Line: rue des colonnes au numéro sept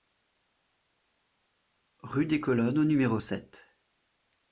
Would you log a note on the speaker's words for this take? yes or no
no